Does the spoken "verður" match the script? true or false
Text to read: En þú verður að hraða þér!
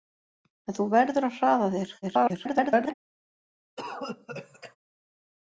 true